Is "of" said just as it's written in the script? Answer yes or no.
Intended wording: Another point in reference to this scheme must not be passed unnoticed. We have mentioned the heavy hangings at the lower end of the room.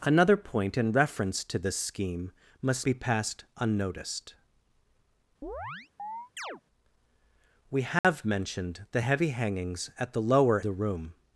no